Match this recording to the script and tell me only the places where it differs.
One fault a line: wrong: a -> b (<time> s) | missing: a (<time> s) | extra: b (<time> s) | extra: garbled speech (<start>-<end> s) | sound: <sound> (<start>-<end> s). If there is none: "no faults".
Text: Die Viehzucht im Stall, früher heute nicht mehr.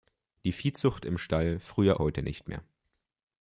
no faults